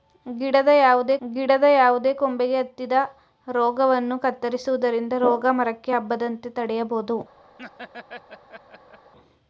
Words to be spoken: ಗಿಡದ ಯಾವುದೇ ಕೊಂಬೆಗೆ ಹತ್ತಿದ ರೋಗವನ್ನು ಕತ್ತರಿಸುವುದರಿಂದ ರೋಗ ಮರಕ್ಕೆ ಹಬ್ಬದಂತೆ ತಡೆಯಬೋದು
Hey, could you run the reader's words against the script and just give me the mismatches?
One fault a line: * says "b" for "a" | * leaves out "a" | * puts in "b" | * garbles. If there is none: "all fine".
* puts in "ಗಿಡದ ಯಾವುದೇ"